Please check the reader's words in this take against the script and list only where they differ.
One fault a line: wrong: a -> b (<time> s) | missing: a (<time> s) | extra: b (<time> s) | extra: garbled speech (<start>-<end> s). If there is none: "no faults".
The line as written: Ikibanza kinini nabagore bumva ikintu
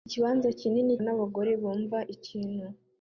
no faults